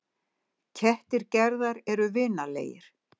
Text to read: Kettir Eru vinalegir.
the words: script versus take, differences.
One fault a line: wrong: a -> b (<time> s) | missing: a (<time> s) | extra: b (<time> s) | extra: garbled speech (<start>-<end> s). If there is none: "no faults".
extra: Gerðar (1.4 s)